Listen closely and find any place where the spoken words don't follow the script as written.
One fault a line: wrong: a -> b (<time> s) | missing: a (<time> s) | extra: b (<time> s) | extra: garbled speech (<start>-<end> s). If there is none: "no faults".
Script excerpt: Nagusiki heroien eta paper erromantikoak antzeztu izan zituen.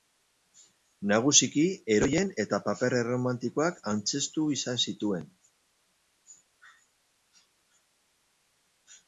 no faults